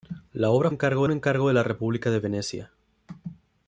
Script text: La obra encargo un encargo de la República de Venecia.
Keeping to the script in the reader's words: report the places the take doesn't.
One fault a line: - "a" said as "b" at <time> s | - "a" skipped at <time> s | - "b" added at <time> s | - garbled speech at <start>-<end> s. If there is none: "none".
none